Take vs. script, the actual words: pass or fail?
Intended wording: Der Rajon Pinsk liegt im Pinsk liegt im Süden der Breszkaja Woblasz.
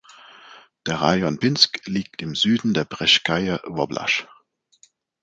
fail